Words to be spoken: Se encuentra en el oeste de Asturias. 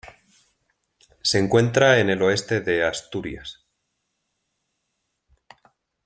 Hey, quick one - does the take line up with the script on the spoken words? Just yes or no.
yes